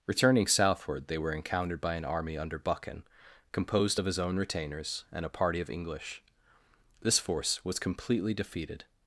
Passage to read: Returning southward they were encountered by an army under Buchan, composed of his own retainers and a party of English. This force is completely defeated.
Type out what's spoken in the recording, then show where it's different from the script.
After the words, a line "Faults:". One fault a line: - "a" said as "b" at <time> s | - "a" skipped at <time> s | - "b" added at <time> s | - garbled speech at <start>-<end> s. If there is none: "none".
Returning southward they were encountered by an army under Buchan, composed of his own retainers and a party of English. This force was completely defeated.
Faults:
- "is" said as "was" at 7.6 s